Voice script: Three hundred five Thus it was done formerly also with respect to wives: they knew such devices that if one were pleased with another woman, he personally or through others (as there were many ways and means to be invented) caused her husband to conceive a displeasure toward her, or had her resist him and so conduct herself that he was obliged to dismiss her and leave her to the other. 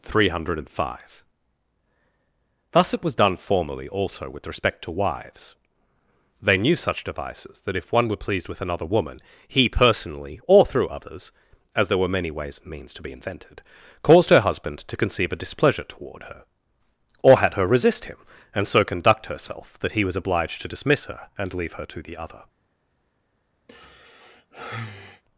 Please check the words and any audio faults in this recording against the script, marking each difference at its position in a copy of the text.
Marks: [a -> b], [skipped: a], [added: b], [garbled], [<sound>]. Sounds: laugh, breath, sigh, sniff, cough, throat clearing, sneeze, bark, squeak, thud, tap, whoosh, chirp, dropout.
Three hundred five Thus it was done formerly also with respect to wives: they knew such devices that if one were pleased with another woman, he personally or through others (as there were many ways and means to be invented) caused her husband to conceive a displeasure toward her, or had her resist him and so conduct herself that he was obliged to dismiss her and leave her to the other. [sigh]